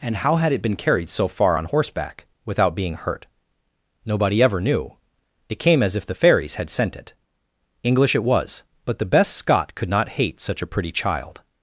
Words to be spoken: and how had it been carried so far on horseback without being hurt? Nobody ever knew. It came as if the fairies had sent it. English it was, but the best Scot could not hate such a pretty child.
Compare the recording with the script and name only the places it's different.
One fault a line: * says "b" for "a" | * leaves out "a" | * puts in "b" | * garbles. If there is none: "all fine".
all fine